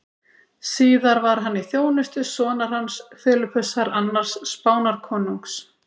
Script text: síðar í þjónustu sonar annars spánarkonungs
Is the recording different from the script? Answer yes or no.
yes